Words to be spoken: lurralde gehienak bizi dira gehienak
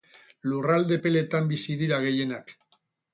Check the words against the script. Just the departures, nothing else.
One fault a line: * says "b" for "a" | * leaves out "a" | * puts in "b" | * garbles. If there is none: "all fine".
* says "epeletan" for "gehienak"